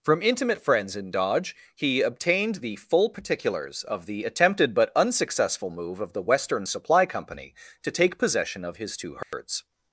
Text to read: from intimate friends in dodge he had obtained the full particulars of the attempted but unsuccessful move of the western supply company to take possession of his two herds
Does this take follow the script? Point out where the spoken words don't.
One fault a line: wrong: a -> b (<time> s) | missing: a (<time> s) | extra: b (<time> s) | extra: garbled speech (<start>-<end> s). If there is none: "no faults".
missing: had (2.0 s)